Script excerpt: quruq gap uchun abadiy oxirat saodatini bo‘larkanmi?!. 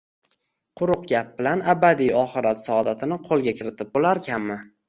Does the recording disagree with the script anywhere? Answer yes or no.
yes